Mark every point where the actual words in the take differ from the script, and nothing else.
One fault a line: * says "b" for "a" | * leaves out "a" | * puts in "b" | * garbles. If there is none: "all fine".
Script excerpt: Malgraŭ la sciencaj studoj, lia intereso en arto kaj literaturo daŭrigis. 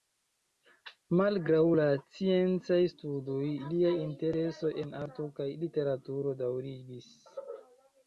all fine